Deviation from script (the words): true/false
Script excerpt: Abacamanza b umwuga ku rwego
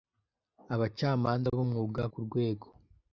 false